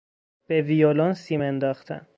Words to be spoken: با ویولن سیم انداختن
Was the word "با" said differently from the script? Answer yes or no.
yes